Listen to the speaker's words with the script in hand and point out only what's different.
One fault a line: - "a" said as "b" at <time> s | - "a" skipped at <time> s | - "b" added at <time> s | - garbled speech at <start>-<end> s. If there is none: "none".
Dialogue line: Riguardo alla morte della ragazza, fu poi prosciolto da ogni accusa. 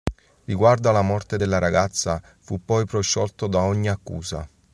none